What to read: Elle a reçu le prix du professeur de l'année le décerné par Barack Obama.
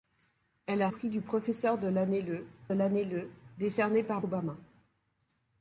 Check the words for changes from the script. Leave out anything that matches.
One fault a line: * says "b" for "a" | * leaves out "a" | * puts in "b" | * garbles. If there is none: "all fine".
* leaves out "reçu le"
* puts in "l'année le"
* leaves out "Barack"